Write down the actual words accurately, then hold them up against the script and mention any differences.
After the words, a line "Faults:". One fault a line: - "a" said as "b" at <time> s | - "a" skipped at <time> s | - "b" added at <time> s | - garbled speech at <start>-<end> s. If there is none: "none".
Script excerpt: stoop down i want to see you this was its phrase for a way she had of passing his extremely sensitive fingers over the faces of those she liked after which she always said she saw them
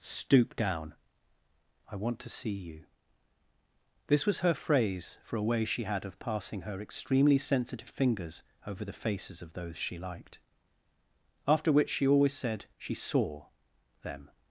stoop down i want to see you this was her phrase for a way she had of passing her extremely sensitive fingers over the faces of those she liked after which she always said she saw them
Faults:
- "its" said as "her" at 4.4 s
- "his" said as "her" at 6.6 s